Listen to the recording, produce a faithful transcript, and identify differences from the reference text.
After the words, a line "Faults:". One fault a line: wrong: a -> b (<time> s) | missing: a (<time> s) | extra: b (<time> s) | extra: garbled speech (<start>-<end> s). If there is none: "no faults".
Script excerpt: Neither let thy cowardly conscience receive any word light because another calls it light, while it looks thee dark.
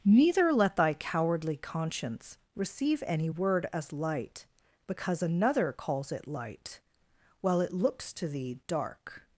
Neither let thy cowardly conscience receive any word as light because another calls it light, while it looks to thee dark.
Faults:
extra: as (3.7 s)
extra: to (8.1 s)